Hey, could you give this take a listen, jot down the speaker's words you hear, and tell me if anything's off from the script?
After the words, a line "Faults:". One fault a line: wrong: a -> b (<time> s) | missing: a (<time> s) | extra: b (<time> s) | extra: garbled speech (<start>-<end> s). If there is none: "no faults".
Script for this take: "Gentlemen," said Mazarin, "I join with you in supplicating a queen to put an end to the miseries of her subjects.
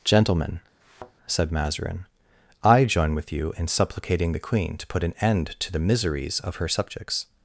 "Gentlemen," said Mazarin, "I join with you in supplicating the queen to put an end to the miseries of her subjects.
Faults:
wrong: a -> the (4.3 s)